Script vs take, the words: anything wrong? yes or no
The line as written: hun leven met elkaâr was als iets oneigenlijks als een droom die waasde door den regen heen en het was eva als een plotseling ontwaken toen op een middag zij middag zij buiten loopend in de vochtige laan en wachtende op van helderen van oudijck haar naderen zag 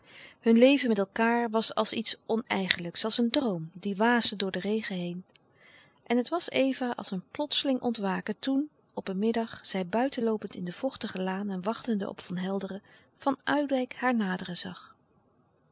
yes